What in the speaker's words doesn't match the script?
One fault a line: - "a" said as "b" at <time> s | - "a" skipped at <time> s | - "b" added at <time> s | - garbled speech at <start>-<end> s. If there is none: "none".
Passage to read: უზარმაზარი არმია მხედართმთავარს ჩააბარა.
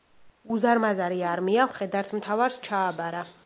none